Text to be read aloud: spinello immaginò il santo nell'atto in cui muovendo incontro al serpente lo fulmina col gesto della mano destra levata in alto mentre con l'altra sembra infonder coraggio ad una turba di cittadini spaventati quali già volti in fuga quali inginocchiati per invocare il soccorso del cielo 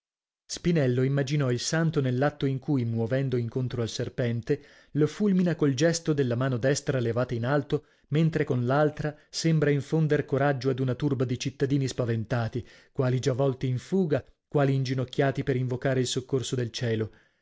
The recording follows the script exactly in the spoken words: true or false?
true